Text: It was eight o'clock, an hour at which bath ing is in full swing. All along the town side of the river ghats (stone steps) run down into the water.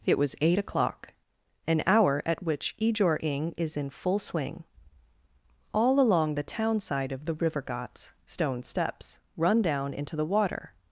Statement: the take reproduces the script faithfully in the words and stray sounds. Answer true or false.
false